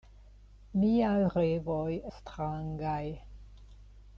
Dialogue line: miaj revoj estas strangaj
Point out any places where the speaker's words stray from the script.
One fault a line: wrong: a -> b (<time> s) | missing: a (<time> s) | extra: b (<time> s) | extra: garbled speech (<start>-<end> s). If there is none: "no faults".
missing: estas (1.9 s)